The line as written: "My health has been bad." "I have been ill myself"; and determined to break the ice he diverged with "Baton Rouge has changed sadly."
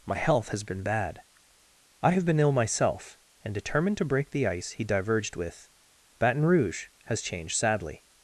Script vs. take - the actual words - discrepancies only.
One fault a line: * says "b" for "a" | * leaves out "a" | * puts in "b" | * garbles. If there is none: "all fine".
all fine